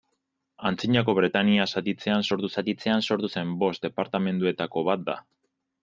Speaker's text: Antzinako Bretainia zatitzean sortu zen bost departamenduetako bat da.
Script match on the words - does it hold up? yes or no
no